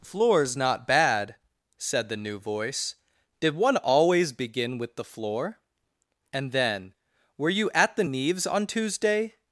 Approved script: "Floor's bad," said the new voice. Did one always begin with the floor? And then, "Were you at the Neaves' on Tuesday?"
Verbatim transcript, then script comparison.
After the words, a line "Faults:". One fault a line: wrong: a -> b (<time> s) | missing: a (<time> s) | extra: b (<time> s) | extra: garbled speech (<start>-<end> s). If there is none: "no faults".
"Floor's not bad," said the new voice. Did one always begin with the floor? And then, "Were you at the Neaves' on Tuesday?"
Faults:
extra: not (0.6 s)